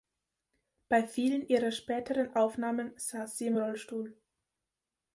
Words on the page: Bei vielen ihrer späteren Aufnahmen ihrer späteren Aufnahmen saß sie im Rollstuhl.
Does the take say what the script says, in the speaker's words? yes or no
no